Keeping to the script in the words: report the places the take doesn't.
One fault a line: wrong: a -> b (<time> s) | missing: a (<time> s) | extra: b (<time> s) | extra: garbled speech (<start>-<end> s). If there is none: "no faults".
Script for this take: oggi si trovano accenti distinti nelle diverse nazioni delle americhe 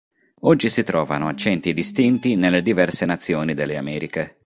no faults